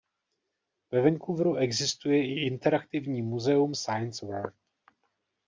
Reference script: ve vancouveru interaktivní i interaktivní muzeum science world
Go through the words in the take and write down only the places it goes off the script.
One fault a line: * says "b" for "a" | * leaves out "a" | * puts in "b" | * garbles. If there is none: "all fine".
* says "existuje" for "interaktivní"